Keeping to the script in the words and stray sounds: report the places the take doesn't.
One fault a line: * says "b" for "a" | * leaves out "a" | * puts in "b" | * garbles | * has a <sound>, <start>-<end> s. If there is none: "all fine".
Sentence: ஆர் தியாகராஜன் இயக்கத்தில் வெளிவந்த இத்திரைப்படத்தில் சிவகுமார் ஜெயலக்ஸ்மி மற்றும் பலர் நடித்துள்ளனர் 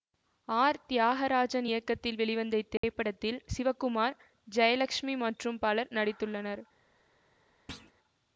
* has a dropout, 2.8-2.8 s
* has a thud, 7.7-7.9 s